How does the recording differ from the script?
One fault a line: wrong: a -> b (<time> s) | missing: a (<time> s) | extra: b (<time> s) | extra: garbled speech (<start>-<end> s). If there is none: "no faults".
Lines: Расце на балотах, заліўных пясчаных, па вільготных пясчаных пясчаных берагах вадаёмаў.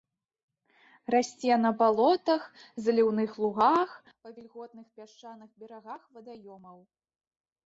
wrong: пясчаных -> лугах (3.5 s)
missing: пясчаных (5.5 s)